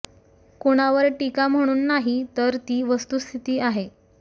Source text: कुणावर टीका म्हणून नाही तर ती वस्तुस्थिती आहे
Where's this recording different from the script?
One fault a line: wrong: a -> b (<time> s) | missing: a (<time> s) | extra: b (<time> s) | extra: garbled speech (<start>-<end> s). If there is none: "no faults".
no faults